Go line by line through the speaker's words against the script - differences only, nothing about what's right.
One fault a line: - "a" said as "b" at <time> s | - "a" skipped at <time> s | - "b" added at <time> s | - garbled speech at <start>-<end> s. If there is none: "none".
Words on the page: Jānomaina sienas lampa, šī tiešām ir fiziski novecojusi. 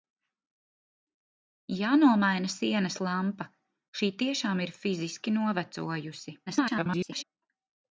- garbled speech at 6.5-7.2 s